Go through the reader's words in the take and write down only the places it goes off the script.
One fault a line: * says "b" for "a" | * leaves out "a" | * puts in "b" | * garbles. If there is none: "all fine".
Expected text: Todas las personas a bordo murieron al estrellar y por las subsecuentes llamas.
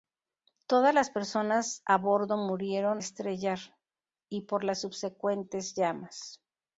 * leaves out "al"